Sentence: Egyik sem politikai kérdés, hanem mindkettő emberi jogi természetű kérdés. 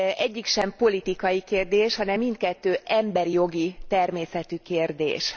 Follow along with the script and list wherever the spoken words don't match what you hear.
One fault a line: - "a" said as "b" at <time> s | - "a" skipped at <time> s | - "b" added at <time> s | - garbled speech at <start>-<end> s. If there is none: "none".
none